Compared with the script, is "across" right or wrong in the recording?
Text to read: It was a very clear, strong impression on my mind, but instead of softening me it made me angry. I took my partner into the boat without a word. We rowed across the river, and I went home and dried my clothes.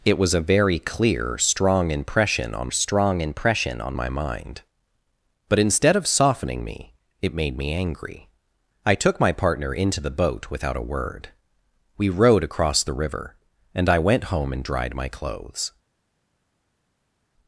right